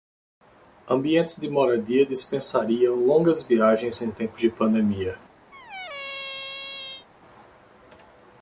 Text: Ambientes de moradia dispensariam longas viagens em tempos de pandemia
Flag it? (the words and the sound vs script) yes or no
yes